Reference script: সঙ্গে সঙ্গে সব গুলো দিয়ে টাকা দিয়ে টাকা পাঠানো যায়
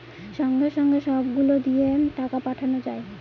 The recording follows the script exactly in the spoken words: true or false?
false